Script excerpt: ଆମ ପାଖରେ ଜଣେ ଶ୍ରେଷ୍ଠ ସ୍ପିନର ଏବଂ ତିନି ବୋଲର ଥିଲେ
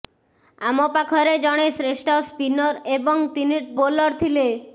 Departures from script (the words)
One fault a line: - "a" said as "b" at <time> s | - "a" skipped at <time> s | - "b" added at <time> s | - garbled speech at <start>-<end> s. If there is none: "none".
none